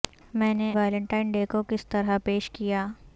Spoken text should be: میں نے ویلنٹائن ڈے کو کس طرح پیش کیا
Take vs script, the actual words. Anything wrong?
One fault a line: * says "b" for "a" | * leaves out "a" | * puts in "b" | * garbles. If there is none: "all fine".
all fine